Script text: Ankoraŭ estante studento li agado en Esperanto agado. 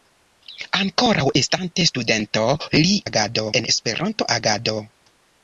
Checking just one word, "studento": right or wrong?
right